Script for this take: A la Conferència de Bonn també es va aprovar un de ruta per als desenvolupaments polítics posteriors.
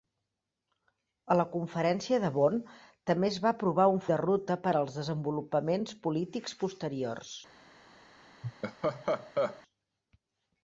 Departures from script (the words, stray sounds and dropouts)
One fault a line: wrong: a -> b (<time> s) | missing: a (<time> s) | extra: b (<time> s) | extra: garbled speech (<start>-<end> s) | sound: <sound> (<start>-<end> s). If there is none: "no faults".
sound: laugh (8.4-9.6 s)